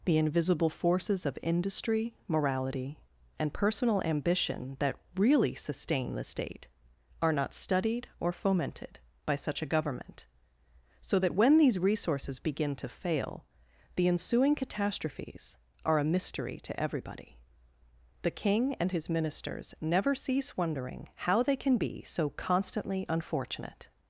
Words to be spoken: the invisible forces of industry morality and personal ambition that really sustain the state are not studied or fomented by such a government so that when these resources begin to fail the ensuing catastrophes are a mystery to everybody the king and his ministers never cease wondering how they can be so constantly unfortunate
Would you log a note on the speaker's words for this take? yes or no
no